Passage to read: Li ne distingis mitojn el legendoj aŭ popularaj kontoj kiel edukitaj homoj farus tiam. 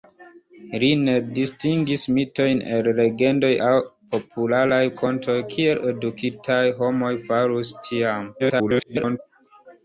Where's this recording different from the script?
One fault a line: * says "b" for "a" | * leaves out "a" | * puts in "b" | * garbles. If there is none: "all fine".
* garbles